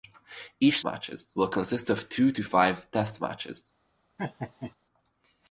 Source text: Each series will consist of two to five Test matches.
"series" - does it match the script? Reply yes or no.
no